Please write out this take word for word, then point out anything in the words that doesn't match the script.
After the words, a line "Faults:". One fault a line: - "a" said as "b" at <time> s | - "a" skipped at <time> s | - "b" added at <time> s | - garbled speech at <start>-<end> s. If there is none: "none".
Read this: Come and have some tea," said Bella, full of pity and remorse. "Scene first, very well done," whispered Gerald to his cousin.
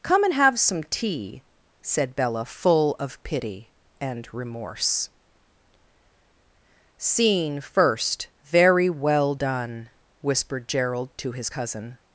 Come and have some tea," said Bella, full of pity and remorse. "Scene first, very well done," whispered Gerald to his cousin.
Faults:
none